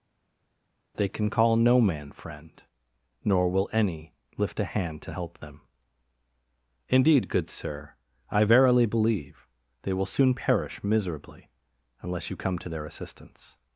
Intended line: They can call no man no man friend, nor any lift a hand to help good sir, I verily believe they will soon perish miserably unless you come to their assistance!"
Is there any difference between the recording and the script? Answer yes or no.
yes